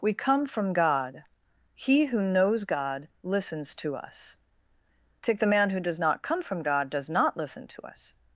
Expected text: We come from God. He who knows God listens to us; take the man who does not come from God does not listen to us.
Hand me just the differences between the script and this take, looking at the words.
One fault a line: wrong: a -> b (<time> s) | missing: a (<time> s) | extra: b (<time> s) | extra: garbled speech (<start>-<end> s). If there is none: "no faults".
no faults